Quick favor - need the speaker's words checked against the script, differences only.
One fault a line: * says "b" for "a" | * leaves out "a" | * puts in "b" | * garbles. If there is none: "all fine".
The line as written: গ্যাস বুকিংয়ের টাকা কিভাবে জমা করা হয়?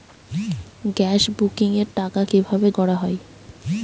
* leaves out "জমা"